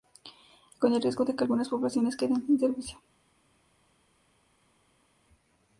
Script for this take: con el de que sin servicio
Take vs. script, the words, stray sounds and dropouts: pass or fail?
fail